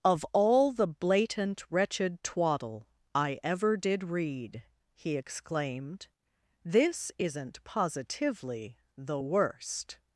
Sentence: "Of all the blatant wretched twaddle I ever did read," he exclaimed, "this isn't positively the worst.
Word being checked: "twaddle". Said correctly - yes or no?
yes